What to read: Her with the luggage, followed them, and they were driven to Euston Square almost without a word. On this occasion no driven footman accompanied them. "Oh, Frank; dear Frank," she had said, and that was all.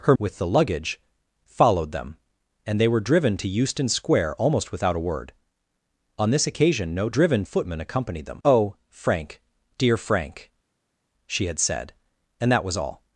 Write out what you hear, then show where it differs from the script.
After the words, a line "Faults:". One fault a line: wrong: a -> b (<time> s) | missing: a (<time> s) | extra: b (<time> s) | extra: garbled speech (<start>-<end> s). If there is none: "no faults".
Her with the luggage, followed them, and they were driven to Euston Square almost without a word. On this occasion no driven footman accompanied them. "Oh, Frank; dear Frank," she had said, and that was all.
Faults:
no faults